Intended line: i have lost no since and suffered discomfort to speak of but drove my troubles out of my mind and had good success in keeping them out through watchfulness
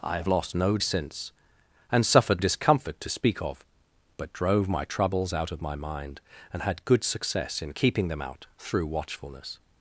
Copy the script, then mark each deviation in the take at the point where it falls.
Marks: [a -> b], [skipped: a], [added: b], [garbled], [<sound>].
i have lost no since and suffered discomfort to speak of but drove my troubles out of my mind and had good success in keeping them out through watchfulness